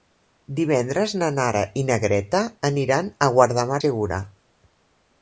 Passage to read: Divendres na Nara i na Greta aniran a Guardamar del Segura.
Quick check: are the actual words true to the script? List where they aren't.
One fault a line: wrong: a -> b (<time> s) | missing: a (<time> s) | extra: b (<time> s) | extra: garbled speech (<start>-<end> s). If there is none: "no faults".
missing: del (3.8 s)